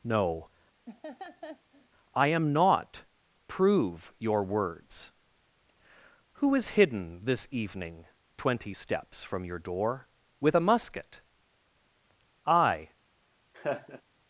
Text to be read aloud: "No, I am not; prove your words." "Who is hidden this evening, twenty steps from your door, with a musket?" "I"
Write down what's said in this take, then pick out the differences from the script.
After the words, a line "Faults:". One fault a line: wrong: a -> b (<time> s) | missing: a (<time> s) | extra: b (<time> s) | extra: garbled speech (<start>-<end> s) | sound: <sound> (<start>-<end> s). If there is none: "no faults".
"No, I am not; prove your words." "Who is hidden this evening, twenty steps from your door, with a musket?" "I"
Faults:
sound: laugh (0.9-1.9 s)
sound: laugh (13.5-14.0 s)